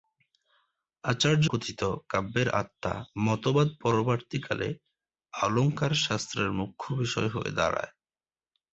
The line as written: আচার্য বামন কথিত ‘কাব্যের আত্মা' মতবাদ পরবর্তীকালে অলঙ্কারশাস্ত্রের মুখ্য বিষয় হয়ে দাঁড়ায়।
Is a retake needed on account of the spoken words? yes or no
yes